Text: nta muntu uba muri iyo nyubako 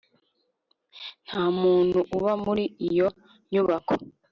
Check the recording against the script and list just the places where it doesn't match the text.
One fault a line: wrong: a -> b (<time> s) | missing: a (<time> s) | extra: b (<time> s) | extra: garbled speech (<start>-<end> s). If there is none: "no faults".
no faults